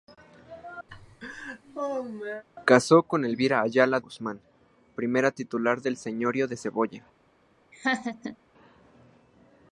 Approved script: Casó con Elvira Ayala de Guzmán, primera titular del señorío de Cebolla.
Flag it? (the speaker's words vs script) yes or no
yes